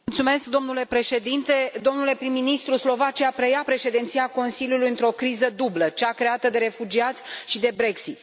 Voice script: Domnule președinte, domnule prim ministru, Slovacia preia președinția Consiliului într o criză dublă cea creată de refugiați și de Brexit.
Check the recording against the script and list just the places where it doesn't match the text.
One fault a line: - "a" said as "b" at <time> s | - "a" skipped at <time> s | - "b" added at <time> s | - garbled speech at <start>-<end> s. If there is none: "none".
none